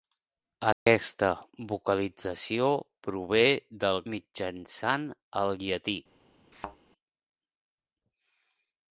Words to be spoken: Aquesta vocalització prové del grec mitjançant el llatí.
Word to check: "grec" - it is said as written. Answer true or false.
false